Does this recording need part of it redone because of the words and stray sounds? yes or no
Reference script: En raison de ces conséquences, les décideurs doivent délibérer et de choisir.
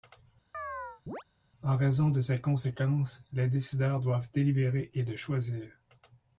yes